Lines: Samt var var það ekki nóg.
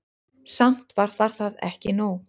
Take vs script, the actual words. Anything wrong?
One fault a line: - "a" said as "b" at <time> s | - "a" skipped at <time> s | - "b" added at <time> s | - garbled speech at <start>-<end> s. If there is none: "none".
none